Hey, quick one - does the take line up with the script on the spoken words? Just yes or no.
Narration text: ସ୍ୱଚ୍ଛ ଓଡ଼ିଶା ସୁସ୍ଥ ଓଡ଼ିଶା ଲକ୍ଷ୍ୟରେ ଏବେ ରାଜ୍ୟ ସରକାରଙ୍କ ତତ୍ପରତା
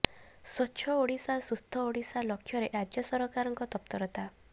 no